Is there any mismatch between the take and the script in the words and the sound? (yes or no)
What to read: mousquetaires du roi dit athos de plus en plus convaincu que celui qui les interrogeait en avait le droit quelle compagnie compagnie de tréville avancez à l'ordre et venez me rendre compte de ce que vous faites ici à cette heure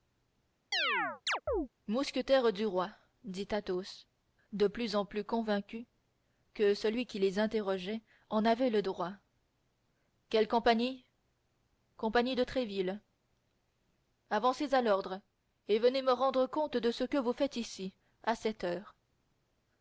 yes